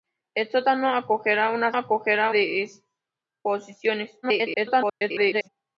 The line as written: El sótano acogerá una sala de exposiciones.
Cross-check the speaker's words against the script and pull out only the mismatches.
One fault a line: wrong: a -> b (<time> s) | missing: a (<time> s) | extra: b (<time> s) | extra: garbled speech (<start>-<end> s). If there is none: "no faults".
wrong: sala -> acogerá (1.8 s)
extra: garbled speech (4.2-5.5 s)